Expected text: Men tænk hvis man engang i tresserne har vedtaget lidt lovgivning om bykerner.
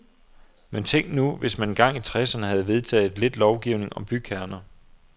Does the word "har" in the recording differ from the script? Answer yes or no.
yes